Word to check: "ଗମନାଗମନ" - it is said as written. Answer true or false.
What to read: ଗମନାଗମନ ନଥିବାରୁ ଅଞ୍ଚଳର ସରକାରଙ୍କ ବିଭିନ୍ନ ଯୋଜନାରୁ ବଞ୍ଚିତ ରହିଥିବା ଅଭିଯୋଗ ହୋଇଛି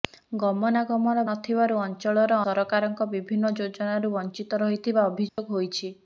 true